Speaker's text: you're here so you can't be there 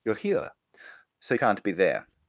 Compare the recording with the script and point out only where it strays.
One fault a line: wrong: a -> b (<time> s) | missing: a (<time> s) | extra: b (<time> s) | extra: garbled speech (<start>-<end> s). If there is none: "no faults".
missing: you (1.3 s)